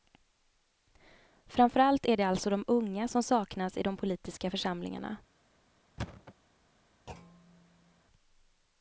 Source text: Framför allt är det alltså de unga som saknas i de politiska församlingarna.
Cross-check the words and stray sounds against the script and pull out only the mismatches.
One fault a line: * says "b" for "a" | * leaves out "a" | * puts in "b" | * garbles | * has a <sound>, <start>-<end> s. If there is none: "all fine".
* has a thud, 6.0-6.3 s
* has a thud, 7.1-8.0 s